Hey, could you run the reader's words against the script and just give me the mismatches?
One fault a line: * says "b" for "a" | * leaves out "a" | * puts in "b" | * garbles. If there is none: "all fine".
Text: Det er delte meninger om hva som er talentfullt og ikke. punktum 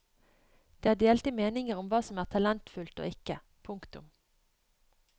all fine